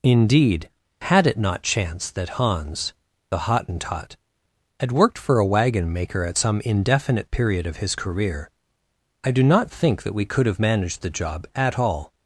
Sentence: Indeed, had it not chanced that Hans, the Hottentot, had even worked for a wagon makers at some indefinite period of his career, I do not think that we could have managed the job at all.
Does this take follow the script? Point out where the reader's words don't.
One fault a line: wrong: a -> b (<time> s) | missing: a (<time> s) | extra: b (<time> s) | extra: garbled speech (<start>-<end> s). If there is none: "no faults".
missing: even (4.9 s)
wrong: makers -> maker (5.9 s)